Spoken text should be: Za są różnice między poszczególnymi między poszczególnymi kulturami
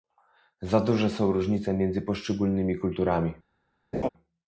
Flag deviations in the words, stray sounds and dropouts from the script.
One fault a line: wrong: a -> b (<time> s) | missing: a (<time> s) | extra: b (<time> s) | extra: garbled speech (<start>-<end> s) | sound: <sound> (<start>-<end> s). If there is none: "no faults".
extra: duże (0.8 s)
missing: między poszczególnymi (2.8 s)
sound: laugh (3.9-4.1 s)